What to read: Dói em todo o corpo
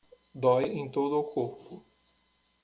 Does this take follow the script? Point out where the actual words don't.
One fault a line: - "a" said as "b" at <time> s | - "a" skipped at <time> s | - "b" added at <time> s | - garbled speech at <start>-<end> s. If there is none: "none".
none